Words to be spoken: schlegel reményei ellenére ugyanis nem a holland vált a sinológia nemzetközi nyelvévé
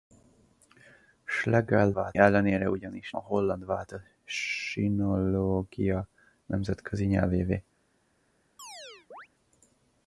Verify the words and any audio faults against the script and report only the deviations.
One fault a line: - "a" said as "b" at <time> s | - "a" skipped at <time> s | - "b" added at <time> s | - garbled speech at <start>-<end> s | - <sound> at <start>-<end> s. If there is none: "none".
- "reményei" said as "vált" at 1.9 s
- "nem" skipped at 3.1 s
- chirp at 8.6-9.3 s